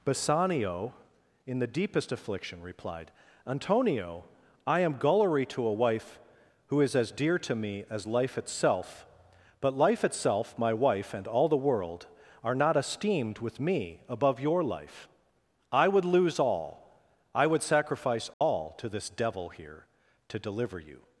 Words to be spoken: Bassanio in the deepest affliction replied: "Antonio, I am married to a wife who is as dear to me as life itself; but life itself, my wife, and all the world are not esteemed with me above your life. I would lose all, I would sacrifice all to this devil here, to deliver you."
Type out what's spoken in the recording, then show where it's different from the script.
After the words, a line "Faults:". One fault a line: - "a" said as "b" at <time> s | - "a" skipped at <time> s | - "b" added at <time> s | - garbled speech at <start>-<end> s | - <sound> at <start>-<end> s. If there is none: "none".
Bassanio in the deepest affliction replied: "Antonio, I am gullery to a wife who is as dear to me as life itself; but life itself, my wife, and all the world are not esteemed with me above your life. I would lose all, I would sacrifice all to this devil here, to deliver you."
Faults:
- "married" said as "gullery" at 5.0 s
- dropout at 18.3-18.4 s